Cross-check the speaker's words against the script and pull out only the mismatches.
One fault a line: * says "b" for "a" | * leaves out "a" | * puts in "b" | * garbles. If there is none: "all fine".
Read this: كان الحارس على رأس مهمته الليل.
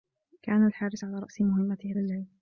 all fine